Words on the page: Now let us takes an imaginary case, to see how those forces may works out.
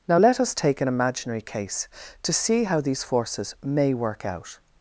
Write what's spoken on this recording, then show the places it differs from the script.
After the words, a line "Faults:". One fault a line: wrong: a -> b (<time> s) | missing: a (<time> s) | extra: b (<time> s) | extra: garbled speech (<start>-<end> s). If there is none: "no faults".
Now let us take an imaginary case, to see how these forces may work out.
Faults:
wrong: takes -> take (0.5 s)
wrong: those -> these (2.8 s)
wrong: works -> work (3.9 s)